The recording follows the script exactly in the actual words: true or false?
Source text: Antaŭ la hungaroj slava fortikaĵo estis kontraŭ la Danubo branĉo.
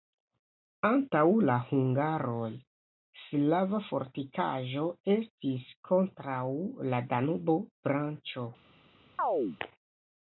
true